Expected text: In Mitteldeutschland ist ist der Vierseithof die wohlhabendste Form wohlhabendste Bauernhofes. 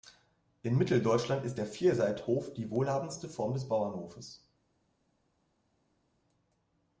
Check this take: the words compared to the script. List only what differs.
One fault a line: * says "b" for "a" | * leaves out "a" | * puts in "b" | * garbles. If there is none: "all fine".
* leaves out "ist"
* says "des" for "wohlhabendste"